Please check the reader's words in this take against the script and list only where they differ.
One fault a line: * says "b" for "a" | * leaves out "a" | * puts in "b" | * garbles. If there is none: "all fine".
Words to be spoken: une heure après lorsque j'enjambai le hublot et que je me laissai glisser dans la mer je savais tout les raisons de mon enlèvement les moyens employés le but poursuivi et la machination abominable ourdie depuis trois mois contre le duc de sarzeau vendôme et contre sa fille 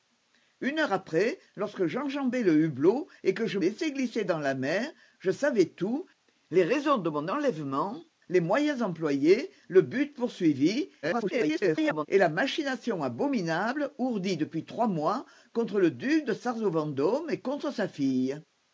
* leaves out "me"
* garbles